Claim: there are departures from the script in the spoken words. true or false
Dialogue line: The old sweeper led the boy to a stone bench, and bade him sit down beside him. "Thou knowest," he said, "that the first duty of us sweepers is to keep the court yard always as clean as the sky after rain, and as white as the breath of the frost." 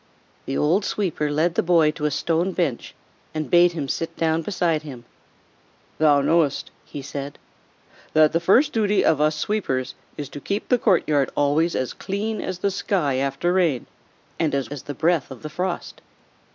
true